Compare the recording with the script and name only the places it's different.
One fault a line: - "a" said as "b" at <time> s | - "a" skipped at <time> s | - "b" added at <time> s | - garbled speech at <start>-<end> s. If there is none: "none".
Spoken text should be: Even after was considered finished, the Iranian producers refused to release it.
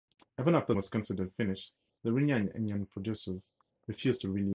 none